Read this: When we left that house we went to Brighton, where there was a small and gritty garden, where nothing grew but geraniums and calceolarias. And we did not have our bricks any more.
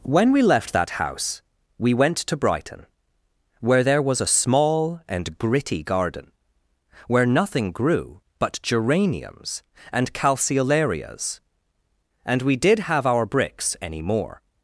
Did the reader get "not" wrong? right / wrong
wrong